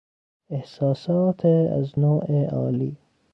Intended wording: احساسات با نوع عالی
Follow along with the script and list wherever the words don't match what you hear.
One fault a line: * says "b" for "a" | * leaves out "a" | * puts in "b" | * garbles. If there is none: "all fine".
* says "از" for "با"